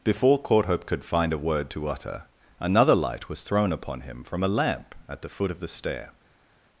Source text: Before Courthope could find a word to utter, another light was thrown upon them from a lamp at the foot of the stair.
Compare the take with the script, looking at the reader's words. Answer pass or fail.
fail